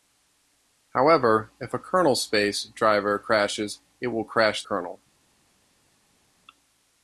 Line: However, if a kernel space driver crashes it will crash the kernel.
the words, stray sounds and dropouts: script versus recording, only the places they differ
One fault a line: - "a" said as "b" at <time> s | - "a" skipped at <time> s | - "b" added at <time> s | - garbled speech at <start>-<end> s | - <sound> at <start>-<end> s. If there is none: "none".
- "the" skipped at 4.6 s